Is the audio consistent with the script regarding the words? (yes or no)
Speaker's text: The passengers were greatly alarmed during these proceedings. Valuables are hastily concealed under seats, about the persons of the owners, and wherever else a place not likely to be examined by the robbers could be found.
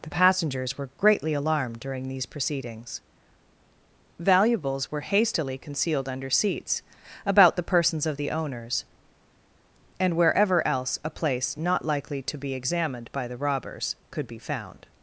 no